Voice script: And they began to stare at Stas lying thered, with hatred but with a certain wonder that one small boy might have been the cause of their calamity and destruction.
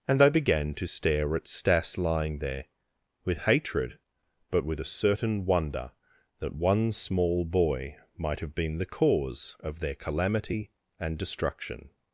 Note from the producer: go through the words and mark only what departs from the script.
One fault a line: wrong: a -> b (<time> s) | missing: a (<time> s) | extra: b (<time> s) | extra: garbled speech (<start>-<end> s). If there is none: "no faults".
wrong: thered -> there (2.4 s)